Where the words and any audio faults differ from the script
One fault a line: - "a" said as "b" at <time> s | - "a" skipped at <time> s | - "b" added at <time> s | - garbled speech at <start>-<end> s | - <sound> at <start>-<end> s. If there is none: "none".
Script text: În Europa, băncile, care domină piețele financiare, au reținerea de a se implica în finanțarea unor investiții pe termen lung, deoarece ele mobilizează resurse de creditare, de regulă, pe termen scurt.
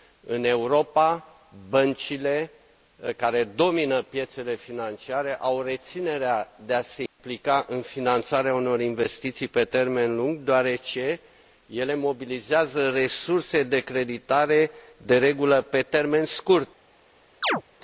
- dropout at 7.1-7.2 s
- chirp at 17.4-17.6 s